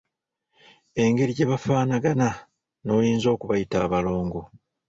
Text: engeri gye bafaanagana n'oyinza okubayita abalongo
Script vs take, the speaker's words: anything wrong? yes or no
no